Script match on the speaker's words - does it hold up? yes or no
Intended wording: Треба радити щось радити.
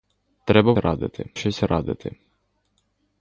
yes